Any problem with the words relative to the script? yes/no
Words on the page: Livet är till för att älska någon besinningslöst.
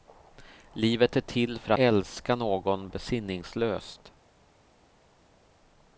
yes